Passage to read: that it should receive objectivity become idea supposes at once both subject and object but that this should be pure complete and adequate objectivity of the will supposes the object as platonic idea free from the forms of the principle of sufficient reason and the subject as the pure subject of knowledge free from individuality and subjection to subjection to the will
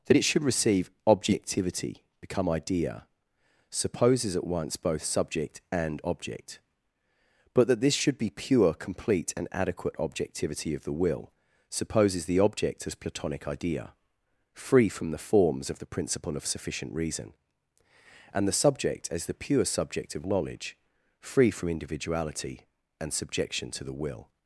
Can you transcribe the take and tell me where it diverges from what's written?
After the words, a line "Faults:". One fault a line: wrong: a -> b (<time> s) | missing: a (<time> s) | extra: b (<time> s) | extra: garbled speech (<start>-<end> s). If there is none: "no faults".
that it should receive objectivity become idea supposes at once both subject and object but that this should be pure complete and adequate objectivity of the will supposes the object as platonic idea free from the forms of the principle of sufficient reason and the subject as the pure subject of knowledge free from individuality and subjection to the will
Faults:
missing: subjection to (23.8 s)